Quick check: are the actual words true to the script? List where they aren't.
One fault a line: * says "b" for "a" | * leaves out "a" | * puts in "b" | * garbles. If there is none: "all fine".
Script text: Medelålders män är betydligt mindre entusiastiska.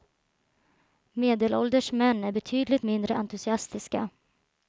all fine